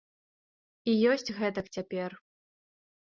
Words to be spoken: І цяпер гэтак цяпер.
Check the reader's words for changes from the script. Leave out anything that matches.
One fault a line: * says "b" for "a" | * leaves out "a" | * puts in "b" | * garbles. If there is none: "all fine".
* says "ёсць" for "цяпер"